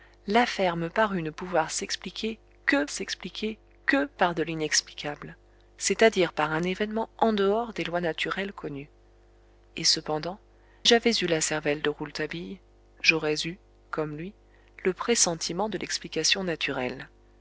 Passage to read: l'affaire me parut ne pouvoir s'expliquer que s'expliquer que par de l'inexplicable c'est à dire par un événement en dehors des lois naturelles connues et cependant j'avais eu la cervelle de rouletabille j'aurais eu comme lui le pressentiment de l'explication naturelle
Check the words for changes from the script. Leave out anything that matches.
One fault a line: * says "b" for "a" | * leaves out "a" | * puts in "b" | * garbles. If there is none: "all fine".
all fine